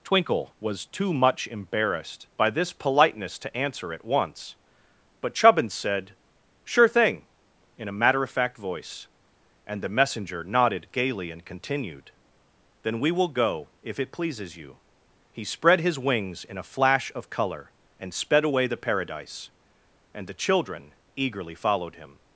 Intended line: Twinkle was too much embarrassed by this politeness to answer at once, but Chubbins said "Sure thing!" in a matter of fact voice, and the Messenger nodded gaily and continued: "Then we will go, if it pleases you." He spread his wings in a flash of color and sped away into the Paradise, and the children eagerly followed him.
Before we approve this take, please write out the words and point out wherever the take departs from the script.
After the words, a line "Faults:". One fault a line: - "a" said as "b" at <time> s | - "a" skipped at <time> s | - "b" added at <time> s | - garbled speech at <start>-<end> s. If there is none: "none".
Twinkle was too much embarrassed by this politeness to answer at once, but Chubbins said "Sure thing!" in a matter of fact voice, and the Messenger nodded gaily and continued: "Then we will go, if it pleases you." He spread his wings in a flash of color and sped away the Paradise, and the children eagerly followed him.
Faults:
- "into" skipped at 18.6 s